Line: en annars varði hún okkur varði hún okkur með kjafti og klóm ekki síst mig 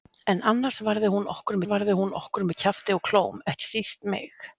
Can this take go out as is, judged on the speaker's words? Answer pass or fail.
pass